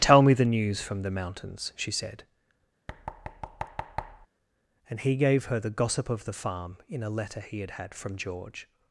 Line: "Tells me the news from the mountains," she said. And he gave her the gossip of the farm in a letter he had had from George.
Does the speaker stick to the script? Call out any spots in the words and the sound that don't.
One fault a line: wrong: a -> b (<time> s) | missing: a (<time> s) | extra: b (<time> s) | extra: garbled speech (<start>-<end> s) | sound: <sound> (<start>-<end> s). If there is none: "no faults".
wrong: Tells -> Tell (0.0 s)
sound: thud (2.9-4.3 s)